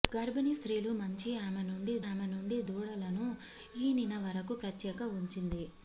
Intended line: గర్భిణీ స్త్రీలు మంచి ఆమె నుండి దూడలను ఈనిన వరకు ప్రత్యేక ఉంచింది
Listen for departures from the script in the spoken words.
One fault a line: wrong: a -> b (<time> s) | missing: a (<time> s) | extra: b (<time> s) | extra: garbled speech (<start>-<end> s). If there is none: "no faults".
extra: ఆమె నుండి (2.0 s)